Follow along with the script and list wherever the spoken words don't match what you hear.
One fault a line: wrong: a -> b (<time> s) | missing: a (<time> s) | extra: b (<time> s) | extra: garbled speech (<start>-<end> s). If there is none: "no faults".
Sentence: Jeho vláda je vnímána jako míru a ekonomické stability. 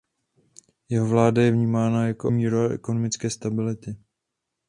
no faults